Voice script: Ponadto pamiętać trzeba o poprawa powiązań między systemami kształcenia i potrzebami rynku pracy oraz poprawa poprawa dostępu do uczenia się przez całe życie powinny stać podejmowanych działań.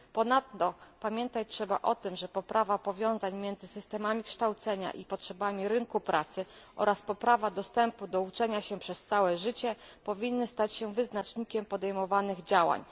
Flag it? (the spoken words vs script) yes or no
yes